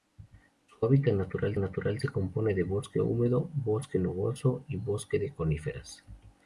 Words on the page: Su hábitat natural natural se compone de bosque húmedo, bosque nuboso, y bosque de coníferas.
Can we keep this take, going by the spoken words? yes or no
yes